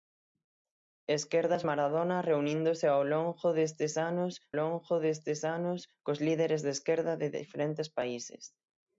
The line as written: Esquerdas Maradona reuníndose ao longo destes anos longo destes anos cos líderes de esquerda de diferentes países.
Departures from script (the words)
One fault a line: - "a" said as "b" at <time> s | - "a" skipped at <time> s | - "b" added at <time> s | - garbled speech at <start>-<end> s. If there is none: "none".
none